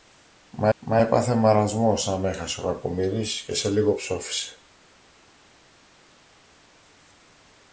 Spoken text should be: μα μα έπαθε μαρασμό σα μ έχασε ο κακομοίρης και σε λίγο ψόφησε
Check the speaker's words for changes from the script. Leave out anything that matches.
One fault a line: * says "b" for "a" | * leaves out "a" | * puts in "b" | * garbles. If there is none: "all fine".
all fine